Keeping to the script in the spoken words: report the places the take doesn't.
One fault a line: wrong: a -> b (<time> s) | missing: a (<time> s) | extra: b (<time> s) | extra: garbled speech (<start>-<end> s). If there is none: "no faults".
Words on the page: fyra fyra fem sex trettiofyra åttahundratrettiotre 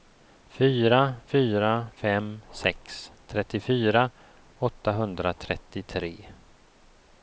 no faults